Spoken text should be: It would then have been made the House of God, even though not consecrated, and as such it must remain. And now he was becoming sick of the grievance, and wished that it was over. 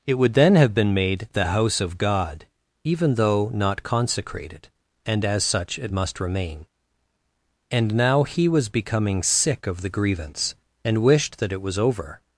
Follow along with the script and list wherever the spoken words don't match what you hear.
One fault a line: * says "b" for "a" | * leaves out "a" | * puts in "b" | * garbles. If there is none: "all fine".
all fine